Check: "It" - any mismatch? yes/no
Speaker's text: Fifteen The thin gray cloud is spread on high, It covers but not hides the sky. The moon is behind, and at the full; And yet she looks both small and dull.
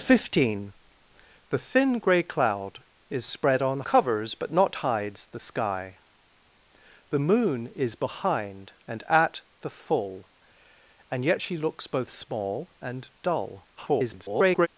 yes